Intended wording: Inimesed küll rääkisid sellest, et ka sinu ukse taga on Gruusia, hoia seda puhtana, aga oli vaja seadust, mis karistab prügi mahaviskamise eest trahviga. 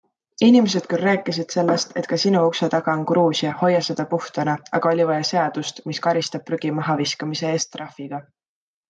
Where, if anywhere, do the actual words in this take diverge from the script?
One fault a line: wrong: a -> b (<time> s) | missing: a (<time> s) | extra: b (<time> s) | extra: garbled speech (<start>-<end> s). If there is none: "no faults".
no faults